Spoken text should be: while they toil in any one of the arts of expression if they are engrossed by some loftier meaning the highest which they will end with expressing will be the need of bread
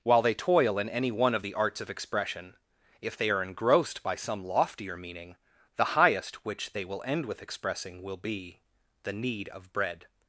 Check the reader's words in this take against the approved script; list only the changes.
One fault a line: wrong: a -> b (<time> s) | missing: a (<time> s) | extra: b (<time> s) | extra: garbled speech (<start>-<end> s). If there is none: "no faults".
no faults